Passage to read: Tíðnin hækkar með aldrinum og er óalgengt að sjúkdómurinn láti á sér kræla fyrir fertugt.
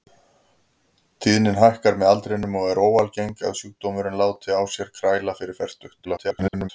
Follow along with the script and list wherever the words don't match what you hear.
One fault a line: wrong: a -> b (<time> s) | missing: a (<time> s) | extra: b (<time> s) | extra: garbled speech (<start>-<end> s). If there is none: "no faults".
extra: garbled speech (6.0-6.7 s)